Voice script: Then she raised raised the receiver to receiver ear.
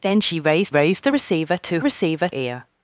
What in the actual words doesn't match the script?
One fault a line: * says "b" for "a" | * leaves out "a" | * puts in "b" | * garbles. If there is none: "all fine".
all fine